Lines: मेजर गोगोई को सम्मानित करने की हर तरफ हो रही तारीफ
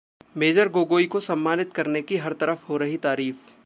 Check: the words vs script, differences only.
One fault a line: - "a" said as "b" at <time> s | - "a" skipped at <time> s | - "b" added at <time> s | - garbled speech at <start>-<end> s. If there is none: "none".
none